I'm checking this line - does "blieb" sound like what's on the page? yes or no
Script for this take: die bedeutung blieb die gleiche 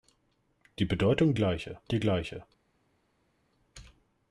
no